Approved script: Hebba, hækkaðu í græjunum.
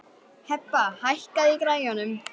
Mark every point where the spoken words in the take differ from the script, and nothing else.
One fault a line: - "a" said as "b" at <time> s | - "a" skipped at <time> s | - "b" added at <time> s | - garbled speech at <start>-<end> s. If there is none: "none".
none